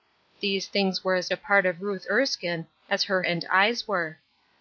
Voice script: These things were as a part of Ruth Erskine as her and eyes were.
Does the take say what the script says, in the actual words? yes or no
yes